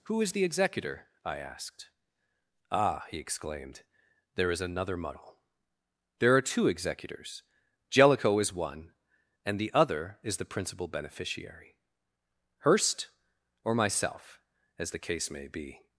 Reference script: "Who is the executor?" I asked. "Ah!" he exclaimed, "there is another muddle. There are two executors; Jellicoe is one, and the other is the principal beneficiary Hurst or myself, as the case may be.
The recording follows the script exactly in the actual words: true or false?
true